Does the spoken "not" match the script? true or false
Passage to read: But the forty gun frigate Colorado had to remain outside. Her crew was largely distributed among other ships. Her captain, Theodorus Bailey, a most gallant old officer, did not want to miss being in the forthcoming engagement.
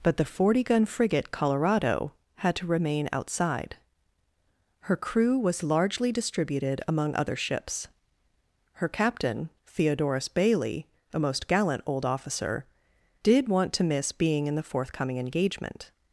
false